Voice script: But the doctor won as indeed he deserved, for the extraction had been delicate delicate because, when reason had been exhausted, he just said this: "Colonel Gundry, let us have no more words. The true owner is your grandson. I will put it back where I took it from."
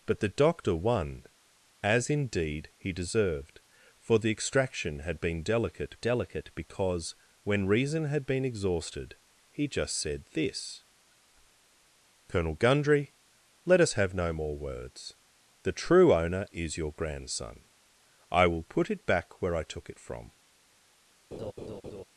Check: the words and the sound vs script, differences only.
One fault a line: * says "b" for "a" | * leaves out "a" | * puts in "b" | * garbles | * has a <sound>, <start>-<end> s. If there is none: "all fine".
* has a laugh, 21.3-22.0 s